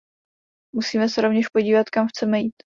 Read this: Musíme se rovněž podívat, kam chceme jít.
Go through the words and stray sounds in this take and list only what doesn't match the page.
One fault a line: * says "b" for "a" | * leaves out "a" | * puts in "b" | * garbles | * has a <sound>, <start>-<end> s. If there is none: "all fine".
all fine